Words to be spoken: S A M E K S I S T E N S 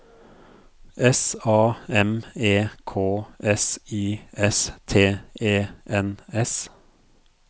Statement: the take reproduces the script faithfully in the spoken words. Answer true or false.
true